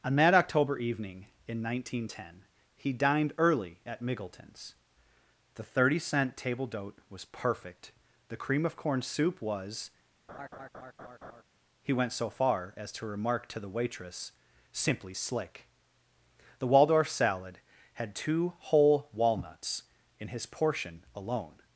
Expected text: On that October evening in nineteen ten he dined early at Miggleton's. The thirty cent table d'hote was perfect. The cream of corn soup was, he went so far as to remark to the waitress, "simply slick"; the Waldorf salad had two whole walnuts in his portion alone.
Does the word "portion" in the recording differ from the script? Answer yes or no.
no